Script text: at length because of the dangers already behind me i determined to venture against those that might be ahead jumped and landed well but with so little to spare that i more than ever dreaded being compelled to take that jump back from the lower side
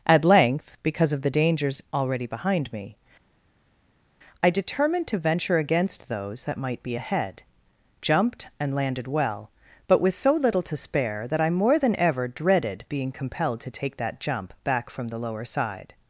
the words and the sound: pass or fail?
pass